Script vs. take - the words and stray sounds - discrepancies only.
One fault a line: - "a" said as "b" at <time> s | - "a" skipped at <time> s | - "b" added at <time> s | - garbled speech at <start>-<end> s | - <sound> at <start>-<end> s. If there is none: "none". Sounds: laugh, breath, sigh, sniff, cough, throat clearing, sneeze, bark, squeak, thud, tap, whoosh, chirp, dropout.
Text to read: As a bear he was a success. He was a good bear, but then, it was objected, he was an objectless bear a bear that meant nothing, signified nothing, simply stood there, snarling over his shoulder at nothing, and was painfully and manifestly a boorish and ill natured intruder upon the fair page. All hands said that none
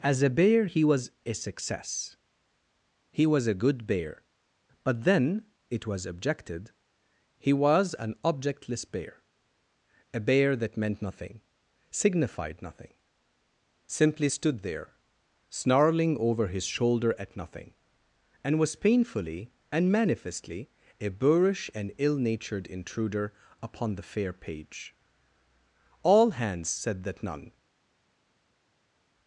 none